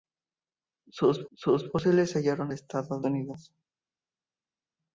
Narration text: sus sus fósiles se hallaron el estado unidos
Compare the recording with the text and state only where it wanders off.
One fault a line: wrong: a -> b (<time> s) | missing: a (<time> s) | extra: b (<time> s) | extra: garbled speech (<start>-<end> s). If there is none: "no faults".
no faults